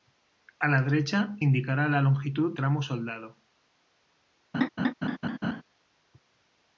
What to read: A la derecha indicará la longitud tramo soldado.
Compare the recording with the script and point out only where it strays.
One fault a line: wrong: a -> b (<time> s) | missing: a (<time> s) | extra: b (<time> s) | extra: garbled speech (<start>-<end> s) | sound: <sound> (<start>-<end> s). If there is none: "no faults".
sound: laugh (4.5-5.6 s)